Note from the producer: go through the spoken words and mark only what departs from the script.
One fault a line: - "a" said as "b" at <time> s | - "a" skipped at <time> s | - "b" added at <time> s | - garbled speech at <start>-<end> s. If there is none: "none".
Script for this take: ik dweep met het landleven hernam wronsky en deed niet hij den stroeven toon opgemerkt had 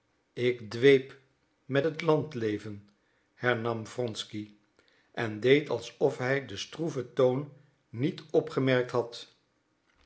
- "niet" said as "alsof" at 5.7 s
- "niet" added at 7.9 s